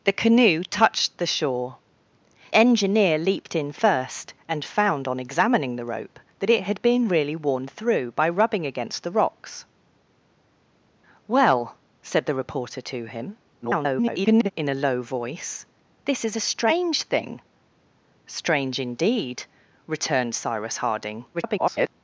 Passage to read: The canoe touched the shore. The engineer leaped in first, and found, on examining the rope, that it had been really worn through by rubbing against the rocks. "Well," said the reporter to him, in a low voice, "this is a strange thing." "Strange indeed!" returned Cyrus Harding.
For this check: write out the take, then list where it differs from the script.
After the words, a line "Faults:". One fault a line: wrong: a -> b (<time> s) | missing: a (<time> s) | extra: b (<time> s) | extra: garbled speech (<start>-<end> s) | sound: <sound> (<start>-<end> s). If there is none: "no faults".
The canoe touched the shore. Engineer leaped in first, and found, on examining the rope, that it had been really worn through by rubbing against the rocks. "Well," said the reporter to him, [garbled] in a low voice, "this is a strange thing." "Strange indeed!" returned Cyrus Harding. [garbled]
Faults:
missing: The (1.8 s)
extra: garbled speech (13.6-14.5 s)
extra: garbled speech (21.3-21.9 s)